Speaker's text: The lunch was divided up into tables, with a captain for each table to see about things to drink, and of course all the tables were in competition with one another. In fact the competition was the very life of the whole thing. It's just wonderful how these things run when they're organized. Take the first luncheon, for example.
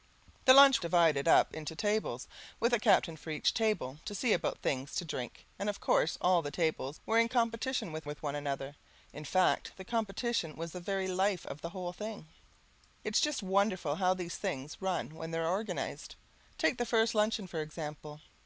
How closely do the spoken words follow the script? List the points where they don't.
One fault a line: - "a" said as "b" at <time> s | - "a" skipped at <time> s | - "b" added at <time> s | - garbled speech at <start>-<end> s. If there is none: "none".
- "was" skipped at 0.8 s
- "with" added at 8.1 s